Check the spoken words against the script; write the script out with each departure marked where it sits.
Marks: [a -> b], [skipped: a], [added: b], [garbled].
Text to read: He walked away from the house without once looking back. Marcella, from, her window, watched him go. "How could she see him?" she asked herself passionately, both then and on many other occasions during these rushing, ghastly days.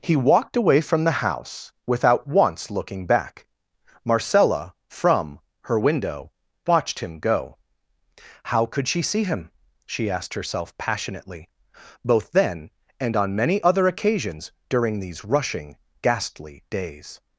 He walked away from the house without once looking back. Marcella, from, her window, watched him go. "How could she see him?" she asked herself passionately, both then and on many other occasions during these rushing, ghastly days.